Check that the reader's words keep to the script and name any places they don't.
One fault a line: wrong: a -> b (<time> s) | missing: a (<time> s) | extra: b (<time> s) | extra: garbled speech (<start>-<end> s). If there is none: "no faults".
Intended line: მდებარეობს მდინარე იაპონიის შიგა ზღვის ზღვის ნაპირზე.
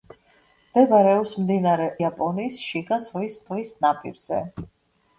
no faults